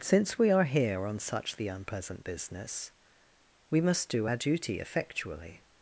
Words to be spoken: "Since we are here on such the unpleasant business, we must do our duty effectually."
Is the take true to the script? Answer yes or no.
yes